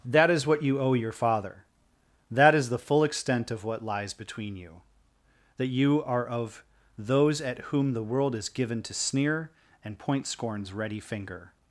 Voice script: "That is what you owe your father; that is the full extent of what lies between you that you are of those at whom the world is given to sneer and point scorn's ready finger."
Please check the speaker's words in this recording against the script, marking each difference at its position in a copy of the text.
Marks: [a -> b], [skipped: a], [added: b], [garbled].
"That is what you owe your father; that is the full extent of what lies between you that you are of those at whom the world is given to sneer and point scorn's ready finger."